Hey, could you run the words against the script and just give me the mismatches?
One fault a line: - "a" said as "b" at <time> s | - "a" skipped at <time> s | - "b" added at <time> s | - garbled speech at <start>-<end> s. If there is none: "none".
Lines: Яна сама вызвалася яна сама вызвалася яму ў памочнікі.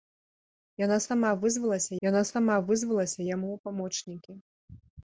none